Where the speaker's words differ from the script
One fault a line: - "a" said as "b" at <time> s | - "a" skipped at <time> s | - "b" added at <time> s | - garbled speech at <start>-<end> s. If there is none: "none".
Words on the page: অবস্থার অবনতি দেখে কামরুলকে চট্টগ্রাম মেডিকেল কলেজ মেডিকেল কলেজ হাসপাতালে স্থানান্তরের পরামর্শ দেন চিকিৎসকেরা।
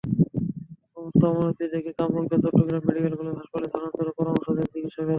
- "মেডিকেল কলেজ" skipped at 3.4 s